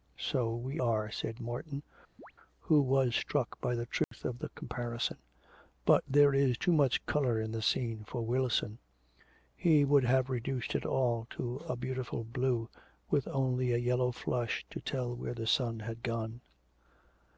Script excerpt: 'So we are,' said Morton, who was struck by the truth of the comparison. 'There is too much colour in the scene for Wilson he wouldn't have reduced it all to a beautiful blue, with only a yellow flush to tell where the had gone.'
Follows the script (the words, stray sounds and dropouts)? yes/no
no